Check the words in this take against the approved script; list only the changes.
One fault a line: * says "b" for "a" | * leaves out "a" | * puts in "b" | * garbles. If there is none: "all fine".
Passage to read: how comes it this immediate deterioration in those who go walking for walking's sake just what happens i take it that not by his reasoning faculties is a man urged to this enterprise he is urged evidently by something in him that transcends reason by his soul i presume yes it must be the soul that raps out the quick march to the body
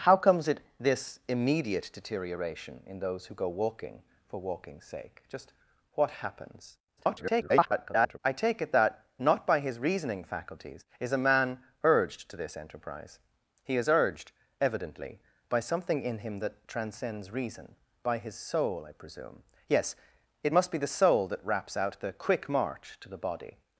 * garbles